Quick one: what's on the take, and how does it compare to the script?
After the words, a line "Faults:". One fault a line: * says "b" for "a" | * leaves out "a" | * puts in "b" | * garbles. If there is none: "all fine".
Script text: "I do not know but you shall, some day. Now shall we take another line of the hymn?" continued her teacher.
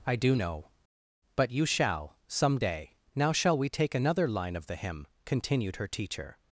"I do know but you shall, some day. Now shall we take another line of the hymn?" continued her teacher.
Faults:
* leaves out "not"